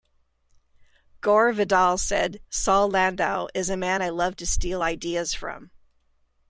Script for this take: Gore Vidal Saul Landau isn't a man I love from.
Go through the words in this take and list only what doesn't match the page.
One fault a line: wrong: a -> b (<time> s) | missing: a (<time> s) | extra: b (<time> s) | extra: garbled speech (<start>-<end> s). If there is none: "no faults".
extra: said (2.0 s)
wrong: isn't -> is (3.5 s)
extra: to steal ideas (4.4 s)